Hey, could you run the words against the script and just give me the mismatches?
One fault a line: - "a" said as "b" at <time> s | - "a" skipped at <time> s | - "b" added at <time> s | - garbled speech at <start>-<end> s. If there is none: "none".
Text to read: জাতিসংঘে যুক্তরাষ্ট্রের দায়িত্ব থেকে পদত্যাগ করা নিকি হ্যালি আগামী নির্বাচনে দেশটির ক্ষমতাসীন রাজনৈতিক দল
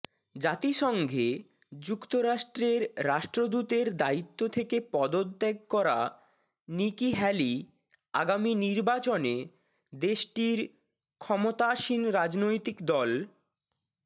- "রাষ্ট্রদূতের" added at 3.0 s